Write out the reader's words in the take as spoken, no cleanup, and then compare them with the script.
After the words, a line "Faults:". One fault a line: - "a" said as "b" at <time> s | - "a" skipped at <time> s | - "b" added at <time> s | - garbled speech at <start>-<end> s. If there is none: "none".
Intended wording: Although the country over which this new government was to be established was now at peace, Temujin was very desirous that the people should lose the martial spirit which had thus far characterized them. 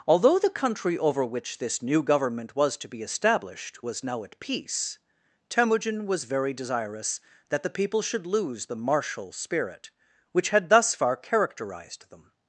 Although the country over which this new government was to be established was now at peace, Temujin was very desirous that the people should lose the martial spirit which had thus far characterized them.
Faults:
none